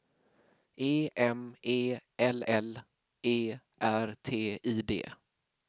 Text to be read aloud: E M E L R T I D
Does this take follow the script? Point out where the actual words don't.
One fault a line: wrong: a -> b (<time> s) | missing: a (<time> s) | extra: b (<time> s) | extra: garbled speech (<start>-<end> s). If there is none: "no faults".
extra: L E (2.4 s)